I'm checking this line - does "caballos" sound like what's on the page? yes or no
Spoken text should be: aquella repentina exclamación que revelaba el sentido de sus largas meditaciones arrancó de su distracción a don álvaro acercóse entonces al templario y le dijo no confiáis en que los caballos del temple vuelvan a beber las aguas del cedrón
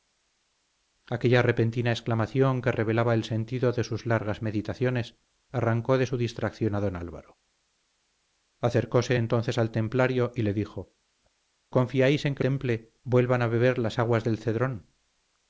no